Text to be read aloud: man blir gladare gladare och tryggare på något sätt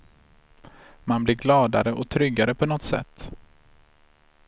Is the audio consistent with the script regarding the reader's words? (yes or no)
no